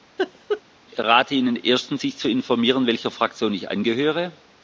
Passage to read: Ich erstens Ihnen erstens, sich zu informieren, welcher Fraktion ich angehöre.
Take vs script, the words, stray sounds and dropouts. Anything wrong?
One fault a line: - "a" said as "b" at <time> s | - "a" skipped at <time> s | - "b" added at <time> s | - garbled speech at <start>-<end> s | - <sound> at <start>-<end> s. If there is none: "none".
- laugh at 0.2-0.6 s
- "erstens" said as "rate" at 1.0 s